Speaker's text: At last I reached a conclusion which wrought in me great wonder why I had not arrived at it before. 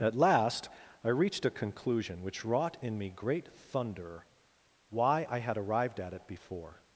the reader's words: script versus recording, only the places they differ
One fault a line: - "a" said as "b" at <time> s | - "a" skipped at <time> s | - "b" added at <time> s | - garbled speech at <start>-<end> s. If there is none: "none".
- "wonder" said as "thunder" at 3.5 s
- "not" skipped at 5.6 s